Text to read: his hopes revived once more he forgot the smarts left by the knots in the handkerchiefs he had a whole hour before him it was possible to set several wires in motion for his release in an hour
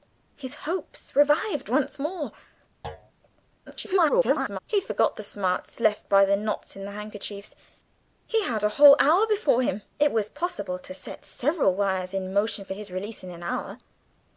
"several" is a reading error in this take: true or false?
false